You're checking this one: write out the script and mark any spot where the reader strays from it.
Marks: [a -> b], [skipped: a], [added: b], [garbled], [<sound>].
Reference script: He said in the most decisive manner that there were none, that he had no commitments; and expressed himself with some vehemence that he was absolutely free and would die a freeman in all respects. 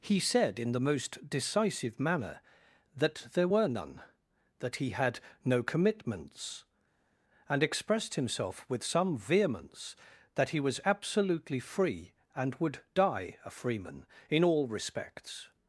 He said in the most decisive manner that there were none, that he had no commitments; and expressed himself with some vehemence that he was absolutely free and would die a freeman in all respects.